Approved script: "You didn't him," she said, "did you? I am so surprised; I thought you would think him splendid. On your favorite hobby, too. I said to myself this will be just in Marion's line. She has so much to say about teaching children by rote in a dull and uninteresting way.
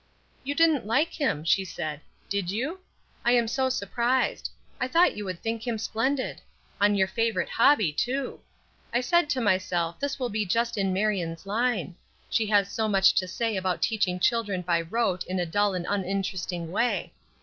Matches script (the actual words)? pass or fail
fail